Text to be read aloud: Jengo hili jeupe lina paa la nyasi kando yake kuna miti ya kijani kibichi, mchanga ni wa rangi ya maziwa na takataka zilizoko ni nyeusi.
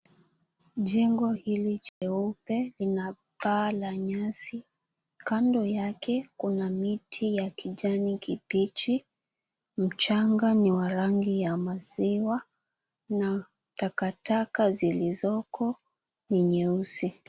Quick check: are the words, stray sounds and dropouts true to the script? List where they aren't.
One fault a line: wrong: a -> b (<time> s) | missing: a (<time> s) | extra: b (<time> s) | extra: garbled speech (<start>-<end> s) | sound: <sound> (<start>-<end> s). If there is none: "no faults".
sound: dropout (1.9-2.0 s)